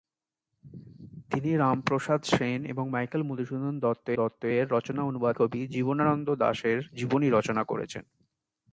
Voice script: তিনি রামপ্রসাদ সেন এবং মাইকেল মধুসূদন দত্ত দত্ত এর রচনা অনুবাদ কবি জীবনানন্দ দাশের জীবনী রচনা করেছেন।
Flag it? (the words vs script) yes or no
no